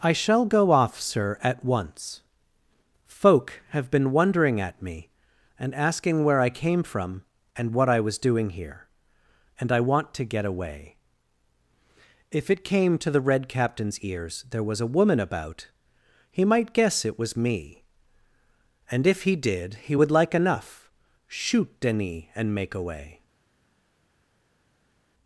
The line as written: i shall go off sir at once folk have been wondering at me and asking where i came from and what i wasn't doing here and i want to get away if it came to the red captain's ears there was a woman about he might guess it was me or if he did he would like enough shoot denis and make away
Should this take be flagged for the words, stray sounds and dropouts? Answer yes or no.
yes